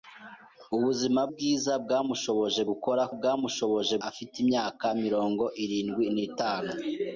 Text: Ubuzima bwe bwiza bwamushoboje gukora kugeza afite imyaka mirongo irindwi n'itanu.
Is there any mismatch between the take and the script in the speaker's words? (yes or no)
yes